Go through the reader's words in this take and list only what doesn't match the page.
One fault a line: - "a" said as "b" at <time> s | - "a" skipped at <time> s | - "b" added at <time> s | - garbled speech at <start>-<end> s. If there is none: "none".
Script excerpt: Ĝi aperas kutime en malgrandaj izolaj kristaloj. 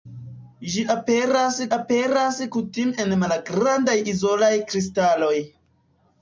- "aperas" added at 1.8 s